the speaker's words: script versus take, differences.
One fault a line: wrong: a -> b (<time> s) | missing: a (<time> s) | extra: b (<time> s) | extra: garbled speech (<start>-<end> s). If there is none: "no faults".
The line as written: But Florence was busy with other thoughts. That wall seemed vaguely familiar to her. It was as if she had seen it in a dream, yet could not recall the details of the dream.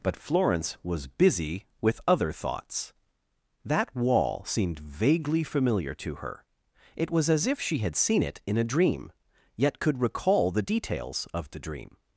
missing: not (10.0 s)